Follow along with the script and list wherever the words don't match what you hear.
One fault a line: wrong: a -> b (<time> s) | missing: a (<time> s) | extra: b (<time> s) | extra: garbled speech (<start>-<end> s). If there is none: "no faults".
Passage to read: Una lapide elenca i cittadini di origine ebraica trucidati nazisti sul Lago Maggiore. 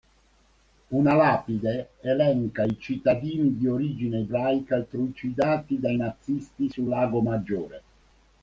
extra: dai (5.8 s)